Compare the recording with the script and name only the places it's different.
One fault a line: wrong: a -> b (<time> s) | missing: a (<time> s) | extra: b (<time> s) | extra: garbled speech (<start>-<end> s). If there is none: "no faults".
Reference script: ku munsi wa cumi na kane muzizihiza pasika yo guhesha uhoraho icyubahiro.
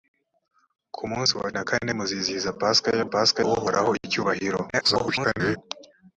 missing: cumi (1.5 s)
wrong: guhesha -> pasika (3.1 s)
extra: garbled speech (4.7-5.6 s)